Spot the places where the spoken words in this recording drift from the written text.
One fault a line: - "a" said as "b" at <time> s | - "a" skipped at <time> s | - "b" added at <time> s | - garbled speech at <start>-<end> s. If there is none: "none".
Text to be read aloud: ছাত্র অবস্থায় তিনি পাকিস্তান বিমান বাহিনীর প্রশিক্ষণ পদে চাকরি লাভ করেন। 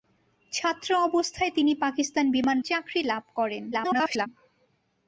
- "বাহিনীর প্রশিক্ষণ পদে" skipped at 2.6 s
- garbled speech at 3.7-4.3 s